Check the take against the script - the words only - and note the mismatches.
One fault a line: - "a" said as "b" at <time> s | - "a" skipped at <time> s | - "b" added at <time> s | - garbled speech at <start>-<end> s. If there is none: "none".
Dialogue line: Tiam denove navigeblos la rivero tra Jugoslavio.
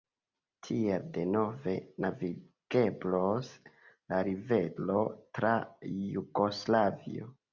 - "Tiam" said as "Tiel" at 0.7 s